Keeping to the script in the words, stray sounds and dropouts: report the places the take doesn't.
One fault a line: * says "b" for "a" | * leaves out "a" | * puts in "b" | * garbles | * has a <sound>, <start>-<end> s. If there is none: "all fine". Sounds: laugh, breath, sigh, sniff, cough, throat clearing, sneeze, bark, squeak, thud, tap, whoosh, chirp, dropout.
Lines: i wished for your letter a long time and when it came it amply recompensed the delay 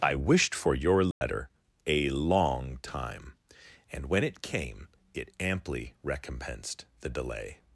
* has a dropout, 1.1-1.2 s